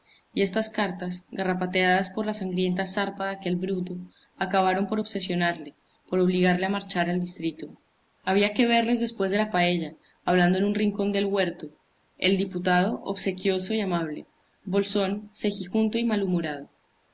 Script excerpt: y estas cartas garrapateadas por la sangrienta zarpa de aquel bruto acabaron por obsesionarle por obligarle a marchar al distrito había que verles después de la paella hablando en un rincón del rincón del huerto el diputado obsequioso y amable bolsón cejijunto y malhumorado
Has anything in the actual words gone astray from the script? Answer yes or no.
yes